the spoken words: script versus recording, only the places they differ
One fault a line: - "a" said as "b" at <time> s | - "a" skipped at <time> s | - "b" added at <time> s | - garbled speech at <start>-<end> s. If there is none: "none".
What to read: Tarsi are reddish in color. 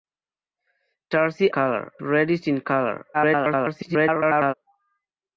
- "are" said as "color" at 1.5 s
- garbled speech at 3.1-4.5 s